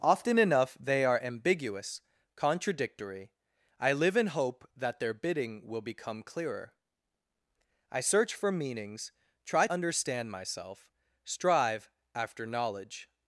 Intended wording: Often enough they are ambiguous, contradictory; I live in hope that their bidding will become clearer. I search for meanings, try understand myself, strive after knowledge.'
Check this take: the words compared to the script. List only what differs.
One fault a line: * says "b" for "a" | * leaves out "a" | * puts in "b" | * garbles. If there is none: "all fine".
all fine